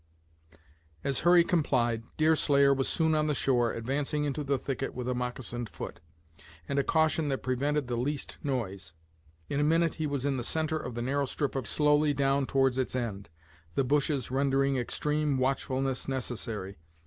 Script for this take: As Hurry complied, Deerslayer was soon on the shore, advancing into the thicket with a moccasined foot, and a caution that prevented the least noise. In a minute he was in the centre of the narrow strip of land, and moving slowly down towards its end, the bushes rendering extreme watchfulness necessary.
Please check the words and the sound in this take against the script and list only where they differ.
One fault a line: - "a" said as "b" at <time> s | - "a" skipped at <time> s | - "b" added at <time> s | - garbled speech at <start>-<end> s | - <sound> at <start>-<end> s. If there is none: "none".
- "land and moving" skipped at 11.7 s